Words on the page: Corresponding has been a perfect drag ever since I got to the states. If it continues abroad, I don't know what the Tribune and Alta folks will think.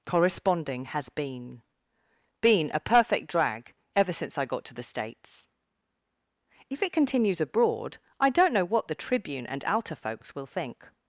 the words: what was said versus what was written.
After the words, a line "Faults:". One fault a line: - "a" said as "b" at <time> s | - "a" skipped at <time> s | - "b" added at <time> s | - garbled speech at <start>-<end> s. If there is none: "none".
Corresponding has been been a perfect drag ever since I got to the states. If it continues abroad, I don't know what the Tribune and Alta folks will think.
Faults:
- "been" added at 2.4 s